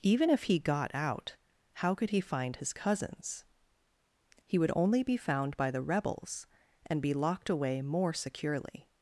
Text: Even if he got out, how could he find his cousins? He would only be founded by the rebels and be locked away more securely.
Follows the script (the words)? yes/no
no